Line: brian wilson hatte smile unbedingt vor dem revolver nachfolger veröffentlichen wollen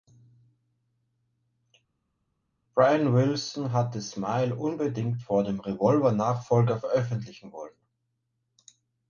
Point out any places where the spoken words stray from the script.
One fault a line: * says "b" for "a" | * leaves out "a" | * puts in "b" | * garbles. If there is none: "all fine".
all fine